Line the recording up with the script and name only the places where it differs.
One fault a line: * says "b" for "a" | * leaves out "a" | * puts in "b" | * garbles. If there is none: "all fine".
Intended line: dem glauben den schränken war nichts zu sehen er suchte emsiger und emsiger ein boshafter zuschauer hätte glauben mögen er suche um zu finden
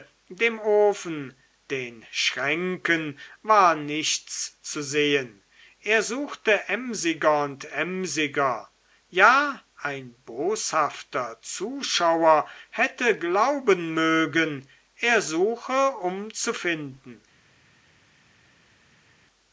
* says "ofen" for "glauben"
* puts in "ja"